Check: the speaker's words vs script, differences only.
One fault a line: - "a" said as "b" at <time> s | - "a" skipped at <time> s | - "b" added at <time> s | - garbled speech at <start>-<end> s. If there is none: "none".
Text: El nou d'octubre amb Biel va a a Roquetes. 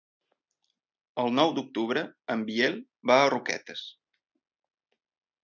- "amb" said as "en" at 2.4 s
- "a" skipped at 3.3 s